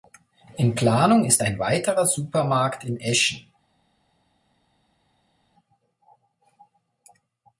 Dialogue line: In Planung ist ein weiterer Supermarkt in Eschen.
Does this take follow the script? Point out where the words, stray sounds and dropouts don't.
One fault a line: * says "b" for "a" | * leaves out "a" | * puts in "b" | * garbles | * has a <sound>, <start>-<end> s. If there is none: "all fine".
all fine